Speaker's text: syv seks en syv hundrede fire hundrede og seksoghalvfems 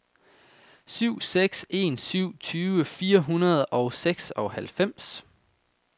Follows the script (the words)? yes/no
no